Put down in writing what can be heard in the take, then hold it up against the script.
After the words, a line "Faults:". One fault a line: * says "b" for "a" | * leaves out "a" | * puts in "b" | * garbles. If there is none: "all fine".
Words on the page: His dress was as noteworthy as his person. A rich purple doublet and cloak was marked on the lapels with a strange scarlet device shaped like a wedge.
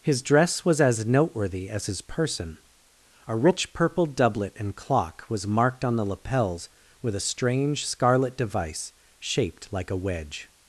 His dress was as noteworthy as his person. A rich purple doublet and clock was marked on the lapels with a strange scarlet device shaped like a wedge.
Faults:
* says "clock" for "cloak"